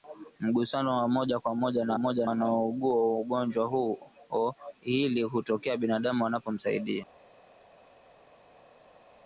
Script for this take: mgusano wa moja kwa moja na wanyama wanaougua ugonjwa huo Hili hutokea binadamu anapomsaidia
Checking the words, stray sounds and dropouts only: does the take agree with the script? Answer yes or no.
no